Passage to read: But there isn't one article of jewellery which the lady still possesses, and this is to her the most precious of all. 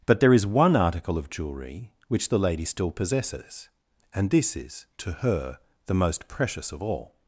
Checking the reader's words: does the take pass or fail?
fail